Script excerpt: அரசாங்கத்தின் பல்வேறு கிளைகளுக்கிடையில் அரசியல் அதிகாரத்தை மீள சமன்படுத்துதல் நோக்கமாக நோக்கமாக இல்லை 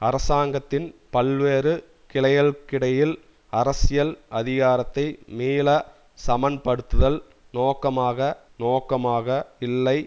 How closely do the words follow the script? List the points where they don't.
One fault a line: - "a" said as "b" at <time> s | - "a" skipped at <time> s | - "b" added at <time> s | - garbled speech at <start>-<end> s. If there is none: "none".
none